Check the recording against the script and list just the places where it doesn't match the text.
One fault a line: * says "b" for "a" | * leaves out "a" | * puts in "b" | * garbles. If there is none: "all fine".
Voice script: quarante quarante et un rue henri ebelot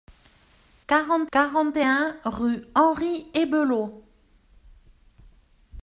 all fine